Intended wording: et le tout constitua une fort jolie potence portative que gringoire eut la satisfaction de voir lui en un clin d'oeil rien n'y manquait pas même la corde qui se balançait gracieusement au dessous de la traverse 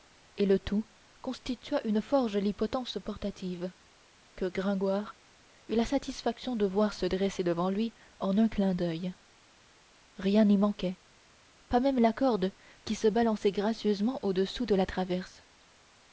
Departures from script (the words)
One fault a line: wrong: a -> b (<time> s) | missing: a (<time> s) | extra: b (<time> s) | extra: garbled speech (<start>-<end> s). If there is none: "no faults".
extra: se dresser devant (6.9 s)